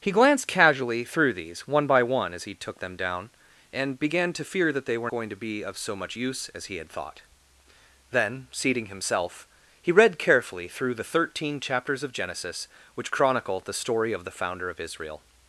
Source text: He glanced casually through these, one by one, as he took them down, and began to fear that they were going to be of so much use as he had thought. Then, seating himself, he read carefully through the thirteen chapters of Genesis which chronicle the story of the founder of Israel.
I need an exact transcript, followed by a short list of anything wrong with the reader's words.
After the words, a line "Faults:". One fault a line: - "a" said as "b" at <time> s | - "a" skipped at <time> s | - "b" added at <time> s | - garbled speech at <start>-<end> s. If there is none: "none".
He glanced casually through these, one by one, as he took them down, and began to fear that they were going to be of so much use as he had thought. Then, seating himself, he read carefully through the thirteen chapters of Genesis which chronicle the story of the founder of Israel.
Faults:
none